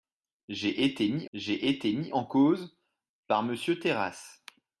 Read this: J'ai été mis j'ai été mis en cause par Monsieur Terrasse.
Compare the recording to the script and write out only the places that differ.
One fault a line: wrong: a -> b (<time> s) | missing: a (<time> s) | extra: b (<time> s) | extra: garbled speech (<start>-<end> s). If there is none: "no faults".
no faults